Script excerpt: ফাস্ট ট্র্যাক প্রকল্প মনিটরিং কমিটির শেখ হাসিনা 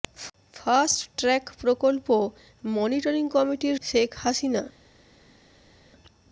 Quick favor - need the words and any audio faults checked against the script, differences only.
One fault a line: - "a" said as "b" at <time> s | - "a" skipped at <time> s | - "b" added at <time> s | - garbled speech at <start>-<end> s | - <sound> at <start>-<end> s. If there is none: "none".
none